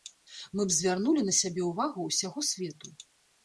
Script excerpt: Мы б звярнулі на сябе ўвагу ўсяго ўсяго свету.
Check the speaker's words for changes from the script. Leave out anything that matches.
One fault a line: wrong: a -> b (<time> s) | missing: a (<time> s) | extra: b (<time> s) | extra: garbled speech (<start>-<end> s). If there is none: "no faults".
missing: ўсяго (2.5 s)